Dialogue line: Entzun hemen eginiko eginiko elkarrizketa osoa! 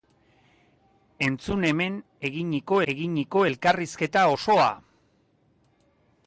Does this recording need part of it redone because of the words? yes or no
no